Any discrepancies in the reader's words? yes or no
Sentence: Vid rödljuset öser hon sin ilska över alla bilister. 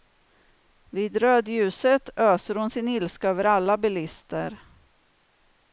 no